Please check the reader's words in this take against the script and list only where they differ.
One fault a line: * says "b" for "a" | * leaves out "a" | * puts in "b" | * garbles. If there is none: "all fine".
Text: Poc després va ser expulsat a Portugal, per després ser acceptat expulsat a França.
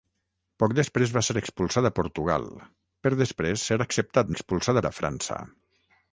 all fine